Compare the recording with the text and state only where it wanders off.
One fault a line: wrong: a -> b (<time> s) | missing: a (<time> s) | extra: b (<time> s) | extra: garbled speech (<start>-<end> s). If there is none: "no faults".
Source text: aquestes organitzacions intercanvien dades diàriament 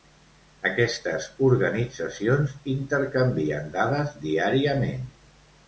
no faults